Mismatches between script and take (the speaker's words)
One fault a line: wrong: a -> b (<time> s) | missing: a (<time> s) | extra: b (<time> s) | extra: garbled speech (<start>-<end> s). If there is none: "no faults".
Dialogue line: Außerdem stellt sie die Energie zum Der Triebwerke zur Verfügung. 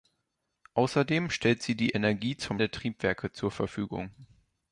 no faults